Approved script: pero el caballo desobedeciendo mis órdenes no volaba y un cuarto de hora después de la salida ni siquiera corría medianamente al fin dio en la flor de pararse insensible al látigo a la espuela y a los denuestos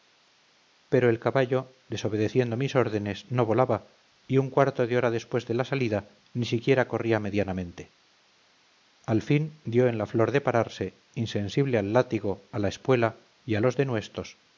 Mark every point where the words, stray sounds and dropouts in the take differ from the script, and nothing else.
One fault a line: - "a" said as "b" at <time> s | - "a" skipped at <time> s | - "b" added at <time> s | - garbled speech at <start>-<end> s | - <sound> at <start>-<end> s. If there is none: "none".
none